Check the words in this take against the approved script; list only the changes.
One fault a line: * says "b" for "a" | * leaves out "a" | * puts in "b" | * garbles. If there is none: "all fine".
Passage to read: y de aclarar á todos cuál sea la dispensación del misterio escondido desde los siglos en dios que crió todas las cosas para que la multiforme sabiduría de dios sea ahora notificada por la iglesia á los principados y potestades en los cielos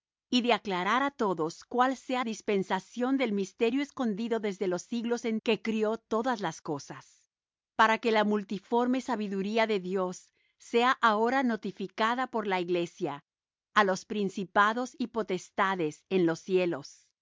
* leaves out "la"
* leaves out "dios"